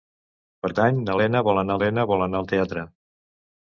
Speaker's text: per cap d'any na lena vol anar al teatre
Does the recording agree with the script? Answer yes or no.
no